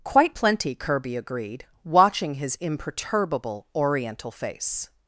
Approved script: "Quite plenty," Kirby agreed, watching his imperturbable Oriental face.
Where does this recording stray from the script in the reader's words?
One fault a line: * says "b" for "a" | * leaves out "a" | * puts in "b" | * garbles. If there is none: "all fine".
all fine